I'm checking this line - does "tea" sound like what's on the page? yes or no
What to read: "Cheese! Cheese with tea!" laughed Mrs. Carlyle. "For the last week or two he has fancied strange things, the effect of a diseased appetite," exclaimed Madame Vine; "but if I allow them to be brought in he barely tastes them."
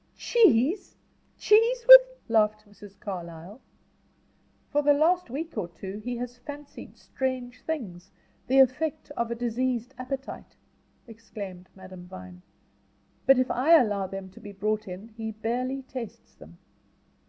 no